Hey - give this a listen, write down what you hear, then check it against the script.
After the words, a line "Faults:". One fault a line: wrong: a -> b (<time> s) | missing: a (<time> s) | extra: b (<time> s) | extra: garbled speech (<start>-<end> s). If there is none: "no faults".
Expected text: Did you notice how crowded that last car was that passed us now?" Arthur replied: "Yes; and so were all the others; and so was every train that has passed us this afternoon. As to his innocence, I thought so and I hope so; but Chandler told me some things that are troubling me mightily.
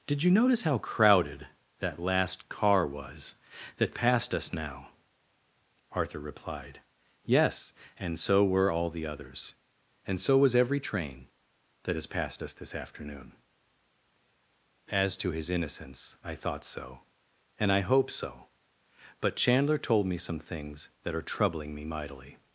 Did you notice how crowded that last car was that passed us now?" Arthur replied: "Yes; and so were all the others; and so was every train that has passed us this afternoon. As to his innocence, I thought so and I hope so; but Chandler told me some things that are troubling me mightily.
Faults:
no faults